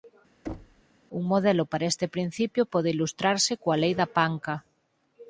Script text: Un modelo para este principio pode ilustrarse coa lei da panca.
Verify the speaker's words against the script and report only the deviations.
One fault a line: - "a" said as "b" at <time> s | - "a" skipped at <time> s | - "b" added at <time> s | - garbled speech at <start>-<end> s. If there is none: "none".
none